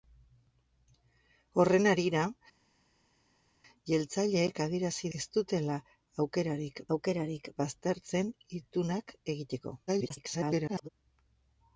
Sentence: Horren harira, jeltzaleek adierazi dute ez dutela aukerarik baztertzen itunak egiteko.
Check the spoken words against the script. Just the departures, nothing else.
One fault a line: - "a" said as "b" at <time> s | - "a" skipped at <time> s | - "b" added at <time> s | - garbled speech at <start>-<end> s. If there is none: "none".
- "dute" skipped at 5.1 s
- "aukerarik" added at 7.0 s
- garbled speech at 9.9-10.9 s